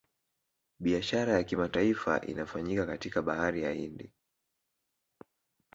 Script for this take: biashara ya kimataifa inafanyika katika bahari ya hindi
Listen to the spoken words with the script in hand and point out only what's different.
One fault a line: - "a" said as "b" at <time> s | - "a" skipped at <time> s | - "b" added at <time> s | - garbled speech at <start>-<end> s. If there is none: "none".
none